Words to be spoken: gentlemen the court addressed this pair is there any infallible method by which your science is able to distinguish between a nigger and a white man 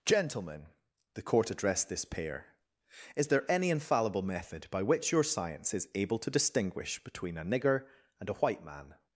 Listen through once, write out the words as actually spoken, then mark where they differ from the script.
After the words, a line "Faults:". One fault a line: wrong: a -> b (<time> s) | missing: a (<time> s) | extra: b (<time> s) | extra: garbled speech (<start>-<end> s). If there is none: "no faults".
gentlemen the court addressed this pair is there any infallible method by which your science is able to distinguish between a nigger and a white man
Faults:
no faults